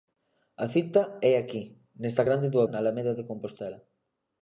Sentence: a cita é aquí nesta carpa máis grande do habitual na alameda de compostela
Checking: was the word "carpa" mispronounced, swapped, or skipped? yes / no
yes